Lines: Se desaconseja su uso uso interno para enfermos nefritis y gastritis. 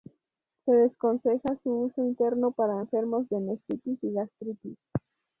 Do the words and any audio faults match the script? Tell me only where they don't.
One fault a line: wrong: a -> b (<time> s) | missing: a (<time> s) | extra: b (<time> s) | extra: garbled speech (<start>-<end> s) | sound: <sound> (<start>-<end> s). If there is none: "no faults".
missing: uso (2.0 s)
extra: de (3.3 s)